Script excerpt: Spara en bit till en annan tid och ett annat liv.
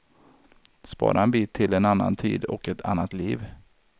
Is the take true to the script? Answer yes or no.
yes